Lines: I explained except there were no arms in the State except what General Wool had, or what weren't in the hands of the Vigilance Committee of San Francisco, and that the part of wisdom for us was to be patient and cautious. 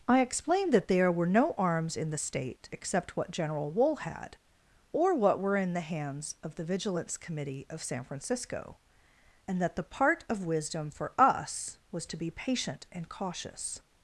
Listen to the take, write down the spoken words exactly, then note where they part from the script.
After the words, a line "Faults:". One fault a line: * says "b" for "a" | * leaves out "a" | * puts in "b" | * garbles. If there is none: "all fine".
I explained that there were no arms in the State except what General Wool had, or what were in the hands of the Vigilance Committee of San Francisco, and that the part of wisdom for us was to be patient and cautious.
Faults:
* says "that" for "except"
* says "were" for "weren't"